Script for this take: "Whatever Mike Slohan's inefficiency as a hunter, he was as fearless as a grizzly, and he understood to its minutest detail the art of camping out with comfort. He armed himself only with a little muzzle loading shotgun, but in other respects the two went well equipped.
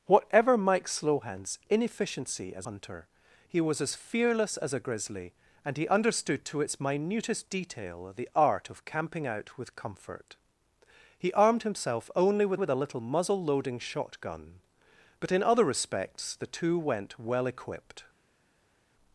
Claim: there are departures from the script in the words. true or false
true